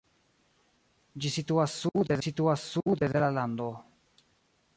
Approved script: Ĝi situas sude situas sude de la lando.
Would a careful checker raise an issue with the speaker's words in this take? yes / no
no